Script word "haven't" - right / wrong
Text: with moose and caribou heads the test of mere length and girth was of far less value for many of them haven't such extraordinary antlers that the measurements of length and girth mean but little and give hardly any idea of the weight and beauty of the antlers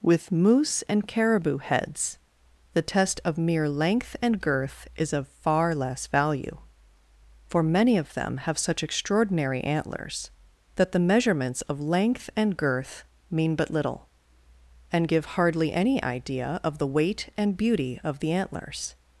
wrong